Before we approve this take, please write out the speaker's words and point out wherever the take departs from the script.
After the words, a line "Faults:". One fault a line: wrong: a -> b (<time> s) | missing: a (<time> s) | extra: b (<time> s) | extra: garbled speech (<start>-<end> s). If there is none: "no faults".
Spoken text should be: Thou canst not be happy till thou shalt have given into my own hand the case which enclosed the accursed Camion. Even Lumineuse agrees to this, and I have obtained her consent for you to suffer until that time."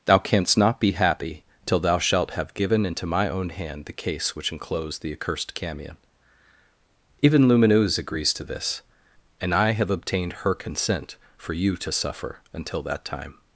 Thou canst not be happy till thou shalt have given into my own hand the case which enclosed the accursed Camion. Even Lumineuse agrees to this, and I have obtained her consent for you to suffer until that time."
Faults:
no faults